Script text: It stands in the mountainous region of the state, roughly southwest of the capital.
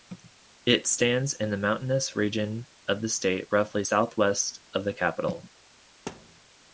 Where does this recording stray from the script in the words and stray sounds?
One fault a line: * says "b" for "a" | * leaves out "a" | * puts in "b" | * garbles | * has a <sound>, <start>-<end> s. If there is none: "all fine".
* has a thud, 6.1-6.4 s